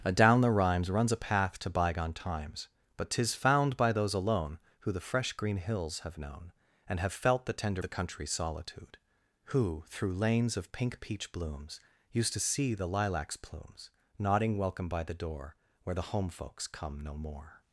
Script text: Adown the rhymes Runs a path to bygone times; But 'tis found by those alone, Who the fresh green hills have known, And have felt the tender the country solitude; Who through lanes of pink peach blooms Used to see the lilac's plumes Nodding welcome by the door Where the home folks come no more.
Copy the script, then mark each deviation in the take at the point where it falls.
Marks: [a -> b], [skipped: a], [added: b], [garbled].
Adown the rhymes Runs a path to bygone times; But 'tis found by those alone, Who the fresh green hills have known, And have felt the tender the country solitude; Who through lanes of pink peach blooms Used to see the lilac's plumes Nodding welcome by the door Where the home folks come no more.